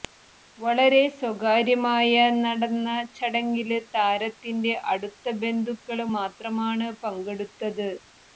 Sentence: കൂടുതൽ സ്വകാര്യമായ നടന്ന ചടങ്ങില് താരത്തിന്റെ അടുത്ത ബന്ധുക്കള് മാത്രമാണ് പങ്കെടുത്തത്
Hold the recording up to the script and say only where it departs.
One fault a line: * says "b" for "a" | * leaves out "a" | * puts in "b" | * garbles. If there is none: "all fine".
* says "വളരെ" for "കൂടുതൽ"